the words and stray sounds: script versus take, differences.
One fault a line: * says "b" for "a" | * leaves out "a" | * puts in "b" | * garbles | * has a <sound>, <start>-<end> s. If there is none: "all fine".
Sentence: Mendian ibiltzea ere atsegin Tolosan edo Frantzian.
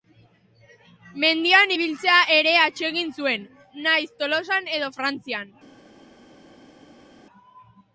* puts in "zuen nahiz"